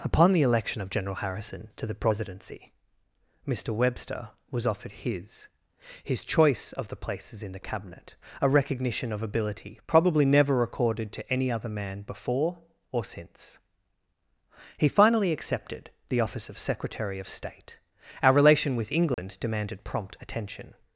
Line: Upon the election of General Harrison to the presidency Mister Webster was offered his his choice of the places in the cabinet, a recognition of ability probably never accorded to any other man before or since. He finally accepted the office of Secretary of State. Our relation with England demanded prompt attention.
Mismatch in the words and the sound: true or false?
true